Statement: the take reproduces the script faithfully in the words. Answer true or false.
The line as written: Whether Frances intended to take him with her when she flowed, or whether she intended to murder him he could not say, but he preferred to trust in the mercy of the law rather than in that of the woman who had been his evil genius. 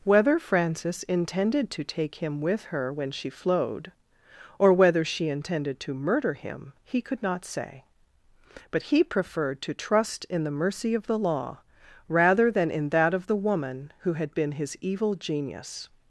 true